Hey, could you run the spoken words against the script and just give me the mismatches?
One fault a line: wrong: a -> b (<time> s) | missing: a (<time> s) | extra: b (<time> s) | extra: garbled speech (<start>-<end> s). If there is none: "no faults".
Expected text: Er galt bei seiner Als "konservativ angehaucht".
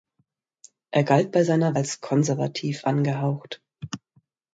no faults